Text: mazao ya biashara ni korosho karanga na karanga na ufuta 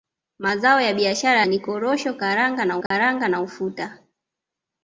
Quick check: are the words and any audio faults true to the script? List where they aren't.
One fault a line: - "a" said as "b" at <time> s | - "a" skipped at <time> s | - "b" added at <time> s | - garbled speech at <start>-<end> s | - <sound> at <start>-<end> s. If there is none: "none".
- dropout at 2.9-2.9 s